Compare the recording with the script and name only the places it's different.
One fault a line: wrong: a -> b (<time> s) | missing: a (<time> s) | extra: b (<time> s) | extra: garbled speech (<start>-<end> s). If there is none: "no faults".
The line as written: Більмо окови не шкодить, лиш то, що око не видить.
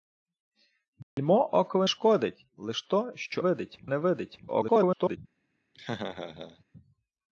missing: не (1.9 s)
wrong: око -> видить (3.4 s)
extra: garbled speech (4.5-5.2 s)